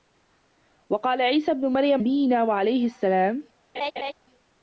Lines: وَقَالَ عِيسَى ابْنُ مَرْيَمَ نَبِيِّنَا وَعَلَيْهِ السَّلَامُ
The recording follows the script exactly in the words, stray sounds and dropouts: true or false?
false